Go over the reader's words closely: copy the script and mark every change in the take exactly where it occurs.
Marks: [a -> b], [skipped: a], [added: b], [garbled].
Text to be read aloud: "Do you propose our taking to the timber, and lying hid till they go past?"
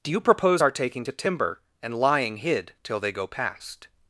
"Do you propose our taking to [skipped: the] timber, and lying hid till they go past?"